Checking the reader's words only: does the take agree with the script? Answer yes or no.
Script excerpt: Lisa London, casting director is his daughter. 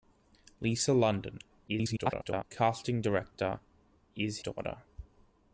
no